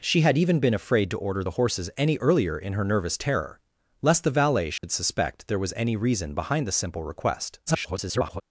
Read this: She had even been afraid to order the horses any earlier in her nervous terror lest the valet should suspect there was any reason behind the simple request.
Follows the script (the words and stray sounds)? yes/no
no